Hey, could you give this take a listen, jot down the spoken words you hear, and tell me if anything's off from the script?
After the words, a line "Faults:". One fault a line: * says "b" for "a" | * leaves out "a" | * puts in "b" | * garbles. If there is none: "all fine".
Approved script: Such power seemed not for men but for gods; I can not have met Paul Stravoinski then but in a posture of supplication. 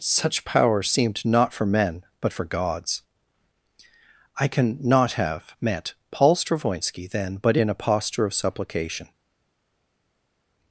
Such power seemed not for men but for gods; I can not have met Paul Stravoinski then but in a posture of supplication.
Faults:
all fine